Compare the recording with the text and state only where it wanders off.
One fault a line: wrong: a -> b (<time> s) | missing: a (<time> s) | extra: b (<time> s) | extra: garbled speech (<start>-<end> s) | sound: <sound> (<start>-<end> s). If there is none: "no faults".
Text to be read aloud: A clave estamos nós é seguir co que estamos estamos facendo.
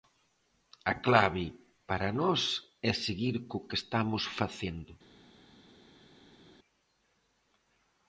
wrong: estamos -> para (1.9 s)
missing: estamos (4.2 s)